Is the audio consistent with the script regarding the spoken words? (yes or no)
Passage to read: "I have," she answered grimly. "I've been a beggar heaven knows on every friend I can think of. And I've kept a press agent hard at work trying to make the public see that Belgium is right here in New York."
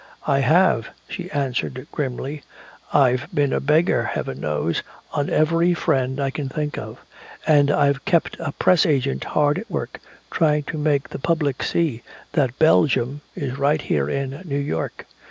yes